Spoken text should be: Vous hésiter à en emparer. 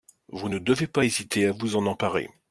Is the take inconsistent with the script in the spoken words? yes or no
yes